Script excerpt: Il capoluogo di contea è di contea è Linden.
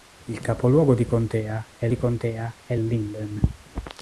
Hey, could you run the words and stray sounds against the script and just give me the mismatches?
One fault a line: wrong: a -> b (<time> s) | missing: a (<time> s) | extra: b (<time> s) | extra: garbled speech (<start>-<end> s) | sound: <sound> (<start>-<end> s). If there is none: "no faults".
no faults